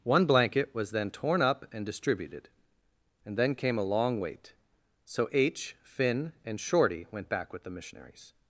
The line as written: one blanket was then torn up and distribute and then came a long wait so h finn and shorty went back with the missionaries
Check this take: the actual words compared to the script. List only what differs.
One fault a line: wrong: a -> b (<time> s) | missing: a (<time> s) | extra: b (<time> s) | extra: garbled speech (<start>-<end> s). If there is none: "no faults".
wrong: distribute -> distributed (1.8 s)